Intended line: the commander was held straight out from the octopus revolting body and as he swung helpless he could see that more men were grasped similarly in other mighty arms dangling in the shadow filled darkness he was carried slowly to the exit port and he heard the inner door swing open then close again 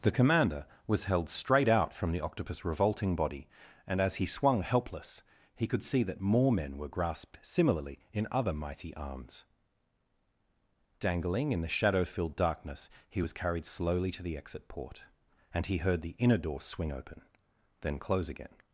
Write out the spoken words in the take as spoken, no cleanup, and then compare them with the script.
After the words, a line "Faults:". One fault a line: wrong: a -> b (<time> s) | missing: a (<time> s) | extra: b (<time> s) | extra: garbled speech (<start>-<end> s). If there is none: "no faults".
the commander was held straight out from the octopus revolting body and as he swung helpless he could see that more men were grasped similarly in other mighty arms dangling in the shadow filled darkness he was carried slowly to the exit port and he heard the inner door swing open then close again
Faults:
no faults